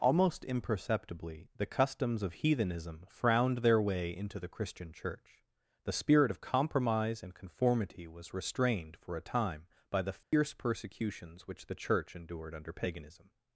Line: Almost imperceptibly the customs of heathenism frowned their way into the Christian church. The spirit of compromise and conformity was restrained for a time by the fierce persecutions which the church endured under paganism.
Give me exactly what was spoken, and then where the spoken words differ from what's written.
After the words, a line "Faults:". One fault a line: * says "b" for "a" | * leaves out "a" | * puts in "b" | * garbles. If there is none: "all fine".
Almost imperceptibly the customs of heathenism frowned their way into the Christian church. The spirit of compromise and conformity was restrained for a time by the fierce persecutions which the church endured under paganism.
Faults:
all fine